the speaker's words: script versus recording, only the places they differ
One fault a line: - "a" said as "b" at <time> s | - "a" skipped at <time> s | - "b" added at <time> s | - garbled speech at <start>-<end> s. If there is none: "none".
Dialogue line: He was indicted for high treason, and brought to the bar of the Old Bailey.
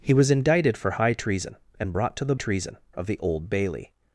- "bar" said as "treason" at 2.3 s